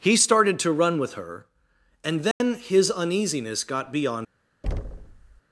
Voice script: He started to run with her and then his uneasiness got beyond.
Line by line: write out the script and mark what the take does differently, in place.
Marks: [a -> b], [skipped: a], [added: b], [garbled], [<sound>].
He started to run with her and then [dropout] his uneasiness got beyond. [thud]